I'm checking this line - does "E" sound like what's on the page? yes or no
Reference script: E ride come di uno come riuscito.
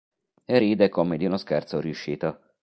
yes